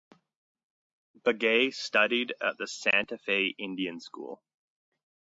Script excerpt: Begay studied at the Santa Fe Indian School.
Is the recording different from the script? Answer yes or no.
no